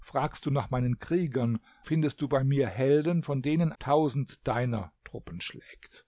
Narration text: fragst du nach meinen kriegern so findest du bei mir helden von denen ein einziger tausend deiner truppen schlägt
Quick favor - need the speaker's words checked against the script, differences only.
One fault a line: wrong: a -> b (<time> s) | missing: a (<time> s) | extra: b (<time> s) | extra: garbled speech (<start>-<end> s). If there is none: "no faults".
missing: so (1.6 s)
missing: ein einziger (3.7 s)